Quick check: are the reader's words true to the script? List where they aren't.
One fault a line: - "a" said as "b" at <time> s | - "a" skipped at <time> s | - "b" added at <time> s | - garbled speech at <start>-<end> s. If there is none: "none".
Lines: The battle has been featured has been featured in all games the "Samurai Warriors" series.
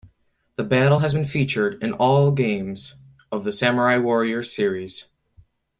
- "has been featured" skipped at 1.8 s
- "of" added at 3.3 s